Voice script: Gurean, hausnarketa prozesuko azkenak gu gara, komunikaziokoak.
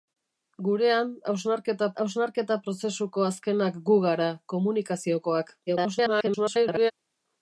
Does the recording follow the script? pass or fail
fail